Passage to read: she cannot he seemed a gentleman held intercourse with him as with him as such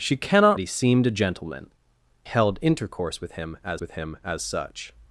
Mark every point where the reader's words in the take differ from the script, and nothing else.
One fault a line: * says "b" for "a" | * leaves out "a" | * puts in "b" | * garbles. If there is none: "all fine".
all fine